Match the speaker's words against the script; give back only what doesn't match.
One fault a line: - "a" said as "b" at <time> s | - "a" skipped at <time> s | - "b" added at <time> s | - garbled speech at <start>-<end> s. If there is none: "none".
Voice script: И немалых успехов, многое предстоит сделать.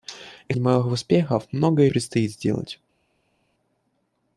none